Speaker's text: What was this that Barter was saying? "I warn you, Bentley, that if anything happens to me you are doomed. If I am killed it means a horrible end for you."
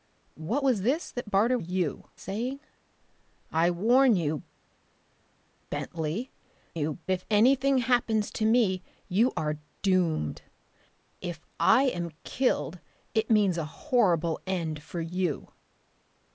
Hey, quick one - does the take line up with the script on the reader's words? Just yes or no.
no